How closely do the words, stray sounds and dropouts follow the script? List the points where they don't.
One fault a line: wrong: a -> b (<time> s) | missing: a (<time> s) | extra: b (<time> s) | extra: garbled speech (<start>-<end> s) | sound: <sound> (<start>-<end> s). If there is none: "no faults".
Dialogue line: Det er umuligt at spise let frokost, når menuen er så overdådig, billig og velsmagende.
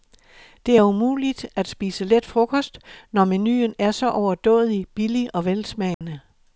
sound: dropout (5.9-6.0 s)